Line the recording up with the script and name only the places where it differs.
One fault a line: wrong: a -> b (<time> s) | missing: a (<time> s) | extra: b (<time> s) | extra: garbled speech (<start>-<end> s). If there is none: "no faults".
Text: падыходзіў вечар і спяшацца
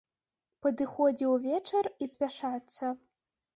no faults